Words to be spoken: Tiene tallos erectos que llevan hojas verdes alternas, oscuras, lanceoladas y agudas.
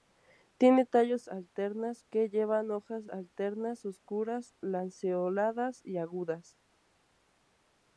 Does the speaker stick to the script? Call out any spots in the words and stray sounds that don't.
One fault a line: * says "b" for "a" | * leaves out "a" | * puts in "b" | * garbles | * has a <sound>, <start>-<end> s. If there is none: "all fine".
* says "alternas" for "erectos"
* leaves out "verdes"